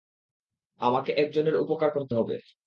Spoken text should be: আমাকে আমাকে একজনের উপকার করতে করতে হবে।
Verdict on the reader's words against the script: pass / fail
fail